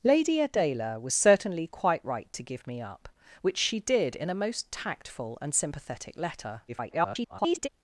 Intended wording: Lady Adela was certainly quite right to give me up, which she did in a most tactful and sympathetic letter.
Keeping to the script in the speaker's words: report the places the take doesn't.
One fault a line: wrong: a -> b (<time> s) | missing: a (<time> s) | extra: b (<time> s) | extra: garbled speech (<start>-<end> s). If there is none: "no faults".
extra: garbled speech (6.7-7.7 s)